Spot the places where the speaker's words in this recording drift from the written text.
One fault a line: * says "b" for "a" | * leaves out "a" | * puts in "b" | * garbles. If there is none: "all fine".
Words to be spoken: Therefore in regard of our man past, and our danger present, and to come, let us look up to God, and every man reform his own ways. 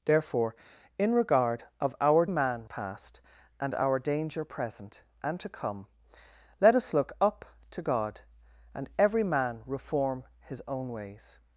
all fine